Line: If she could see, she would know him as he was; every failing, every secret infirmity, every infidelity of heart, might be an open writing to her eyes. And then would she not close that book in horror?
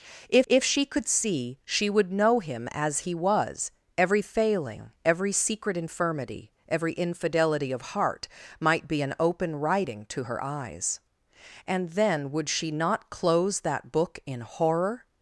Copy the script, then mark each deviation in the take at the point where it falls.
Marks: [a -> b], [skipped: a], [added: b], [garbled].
If [added: if] she could see, she would know him as he was; every failing, every secret infirmity, every infidelity of heart, might be an open writing to her eyes. And then would she not close that book in horror?